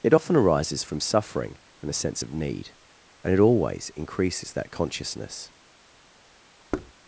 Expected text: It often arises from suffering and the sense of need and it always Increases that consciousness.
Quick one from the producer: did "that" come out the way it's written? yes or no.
yes